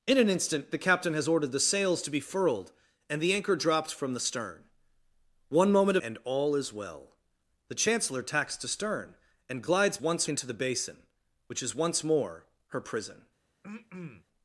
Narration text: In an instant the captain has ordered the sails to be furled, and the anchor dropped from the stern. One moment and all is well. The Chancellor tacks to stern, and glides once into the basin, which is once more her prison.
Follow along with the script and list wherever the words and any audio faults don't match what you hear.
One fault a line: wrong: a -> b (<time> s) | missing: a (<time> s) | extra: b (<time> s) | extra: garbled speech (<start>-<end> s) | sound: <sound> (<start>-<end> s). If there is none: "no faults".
sound: throat clearing (13.6-14.2 s)